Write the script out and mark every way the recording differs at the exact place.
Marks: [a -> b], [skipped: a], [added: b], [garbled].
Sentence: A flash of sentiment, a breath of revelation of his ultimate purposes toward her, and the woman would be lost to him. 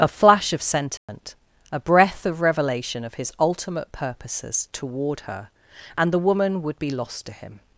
A flash of sentiment, a breath of revelation of his ultimate purposes toward her, and the woman would be lost to him.